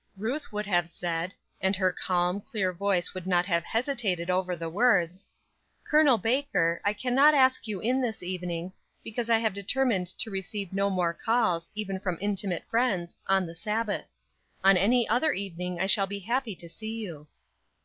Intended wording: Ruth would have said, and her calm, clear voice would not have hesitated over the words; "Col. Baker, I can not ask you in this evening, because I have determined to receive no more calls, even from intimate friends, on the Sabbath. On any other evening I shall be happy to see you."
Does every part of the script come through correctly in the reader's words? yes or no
yes